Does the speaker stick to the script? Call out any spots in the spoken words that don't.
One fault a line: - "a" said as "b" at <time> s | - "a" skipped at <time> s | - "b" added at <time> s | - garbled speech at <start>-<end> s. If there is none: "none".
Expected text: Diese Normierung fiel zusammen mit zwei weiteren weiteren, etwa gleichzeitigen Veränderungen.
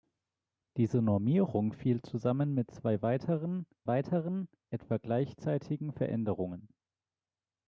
none